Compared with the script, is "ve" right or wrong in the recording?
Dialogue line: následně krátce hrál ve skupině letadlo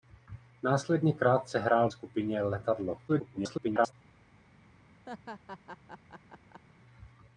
wrong